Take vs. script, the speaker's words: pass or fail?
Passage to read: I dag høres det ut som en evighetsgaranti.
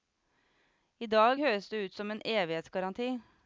pass